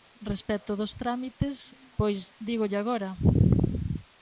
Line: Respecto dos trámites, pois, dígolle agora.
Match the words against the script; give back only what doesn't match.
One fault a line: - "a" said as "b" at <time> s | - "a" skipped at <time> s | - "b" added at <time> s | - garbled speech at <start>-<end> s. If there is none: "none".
none